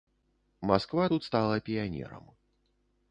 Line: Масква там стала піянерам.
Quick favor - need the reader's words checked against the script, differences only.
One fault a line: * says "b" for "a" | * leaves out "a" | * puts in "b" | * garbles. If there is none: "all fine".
* says "тут" for "там"